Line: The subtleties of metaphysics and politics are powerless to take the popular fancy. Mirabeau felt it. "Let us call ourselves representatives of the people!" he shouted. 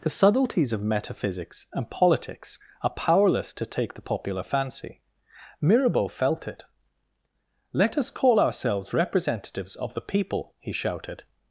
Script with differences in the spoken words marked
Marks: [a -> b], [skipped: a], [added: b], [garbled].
The subtleties of metaphysics and politics are powerless to take the popular fancy. Mirabeau felt it. "Let us call ourselves representatives of the people!" he shouted.